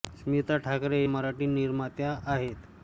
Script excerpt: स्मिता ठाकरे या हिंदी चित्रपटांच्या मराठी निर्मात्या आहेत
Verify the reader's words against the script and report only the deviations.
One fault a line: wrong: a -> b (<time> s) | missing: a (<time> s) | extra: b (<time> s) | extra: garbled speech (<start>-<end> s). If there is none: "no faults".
missing: या हिंदी चित्रपटांच्या (1.0 s)